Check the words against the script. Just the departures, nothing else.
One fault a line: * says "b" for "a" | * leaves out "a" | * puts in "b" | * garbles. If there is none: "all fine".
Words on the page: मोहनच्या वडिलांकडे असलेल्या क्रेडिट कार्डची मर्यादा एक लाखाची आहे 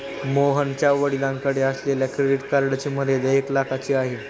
all fine